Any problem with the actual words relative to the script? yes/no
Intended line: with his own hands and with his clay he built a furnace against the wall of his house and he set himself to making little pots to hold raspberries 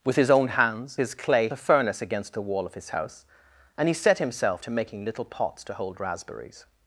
yes